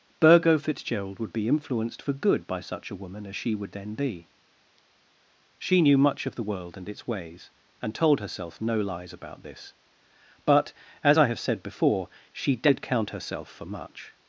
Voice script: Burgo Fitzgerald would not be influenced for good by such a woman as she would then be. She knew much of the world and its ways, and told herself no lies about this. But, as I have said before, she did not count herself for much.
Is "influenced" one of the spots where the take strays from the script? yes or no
no